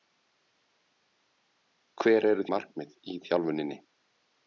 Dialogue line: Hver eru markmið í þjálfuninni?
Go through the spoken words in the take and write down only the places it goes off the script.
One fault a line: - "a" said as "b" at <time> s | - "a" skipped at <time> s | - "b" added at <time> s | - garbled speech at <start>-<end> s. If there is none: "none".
none